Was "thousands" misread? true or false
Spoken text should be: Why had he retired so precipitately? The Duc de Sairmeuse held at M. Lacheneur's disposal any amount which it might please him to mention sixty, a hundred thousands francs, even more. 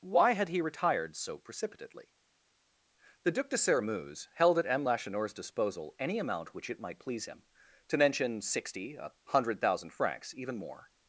true